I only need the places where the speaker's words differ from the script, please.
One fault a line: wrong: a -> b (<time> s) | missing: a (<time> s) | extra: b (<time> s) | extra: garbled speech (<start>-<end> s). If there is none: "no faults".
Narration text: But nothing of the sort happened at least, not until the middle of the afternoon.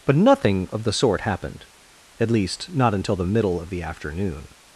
no faults